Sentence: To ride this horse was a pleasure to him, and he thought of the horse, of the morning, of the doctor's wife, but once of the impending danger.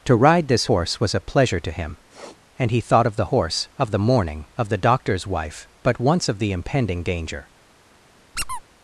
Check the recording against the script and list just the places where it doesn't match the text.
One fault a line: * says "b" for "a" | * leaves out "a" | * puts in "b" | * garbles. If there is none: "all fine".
all fine